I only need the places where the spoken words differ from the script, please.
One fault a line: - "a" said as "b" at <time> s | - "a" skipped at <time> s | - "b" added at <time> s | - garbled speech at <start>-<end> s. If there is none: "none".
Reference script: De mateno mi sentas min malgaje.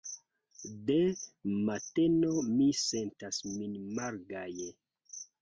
none